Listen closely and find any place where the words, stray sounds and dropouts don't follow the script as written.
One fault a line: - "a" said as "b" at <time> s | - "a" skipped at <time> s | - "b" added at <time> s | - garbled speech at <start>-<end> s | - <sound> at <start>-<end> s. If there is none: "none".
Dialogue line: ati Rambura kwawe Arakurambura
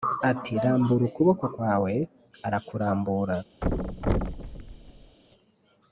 - "ukuboko" added at 1.1 s
- thud at 3.6-5.2 s